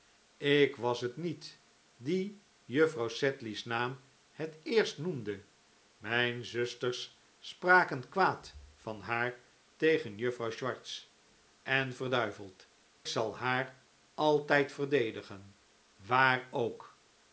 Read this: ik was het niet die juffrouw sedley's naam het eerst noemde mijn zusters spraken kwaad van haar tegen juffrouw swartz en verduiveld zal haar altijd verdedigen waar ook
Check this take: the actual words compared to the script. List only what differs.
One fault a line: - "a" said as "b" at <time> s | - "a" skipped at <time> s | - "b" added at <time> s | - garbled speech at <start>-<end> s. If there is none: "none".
none